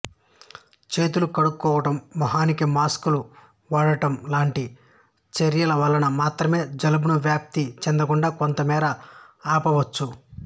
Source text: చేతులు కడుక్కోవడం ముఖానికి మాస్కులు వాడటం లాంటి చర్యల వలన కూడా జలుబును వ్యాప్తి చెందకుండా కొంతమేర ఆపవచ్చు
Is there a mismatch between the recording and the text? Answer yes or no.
yes